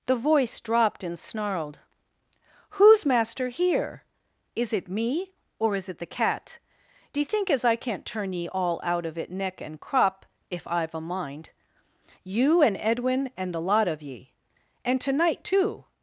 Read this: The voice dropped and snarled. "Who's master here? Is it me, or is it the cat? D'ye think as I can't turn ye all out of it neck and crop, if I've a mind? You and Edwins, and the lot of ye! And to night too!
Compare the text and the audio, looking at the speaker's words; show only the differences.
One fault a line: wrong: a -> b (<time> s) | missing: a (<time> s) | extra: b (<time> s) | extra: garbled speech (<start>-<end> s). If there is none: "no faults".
wrong: Edwins -> Edwin (12.8 s)